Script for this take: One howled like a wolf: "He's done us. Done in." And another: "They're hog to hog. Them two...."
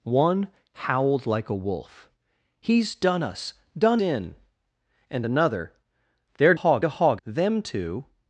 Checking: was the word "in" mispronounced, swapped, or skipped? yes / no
no